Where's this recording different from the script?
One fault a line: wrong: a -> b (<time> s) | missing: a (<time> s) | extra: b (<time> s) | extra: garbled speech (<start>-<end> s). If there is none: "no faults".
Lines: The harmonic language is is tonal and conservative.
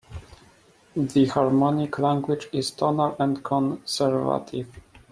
missing: is (2.7 s)